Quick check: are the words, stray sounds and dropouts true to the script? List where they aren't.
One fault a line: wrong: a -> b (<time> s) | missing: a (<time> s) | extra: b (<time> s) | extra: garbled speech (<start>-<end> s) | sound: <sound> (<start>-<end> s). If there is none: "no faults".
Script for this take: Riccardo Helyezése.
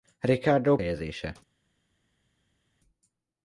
no faults